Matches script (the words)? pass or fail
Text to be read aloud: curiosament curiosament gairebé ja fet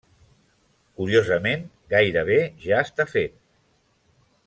fail